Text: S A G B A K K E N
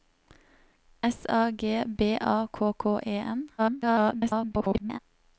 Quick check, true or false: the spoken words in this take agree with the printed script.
false